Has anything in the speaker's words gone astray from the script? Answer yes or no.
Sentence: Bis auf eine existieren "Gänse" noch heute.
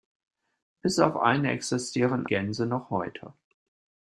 no